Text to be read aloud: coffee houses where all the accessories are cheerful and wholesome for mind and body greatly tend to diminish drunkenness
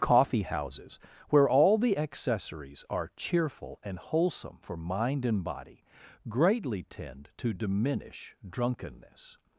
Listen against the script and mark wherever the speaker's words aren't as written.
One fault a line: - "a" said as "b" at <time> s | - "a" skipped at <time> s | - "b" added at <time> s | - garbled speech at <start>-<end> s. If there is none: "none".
none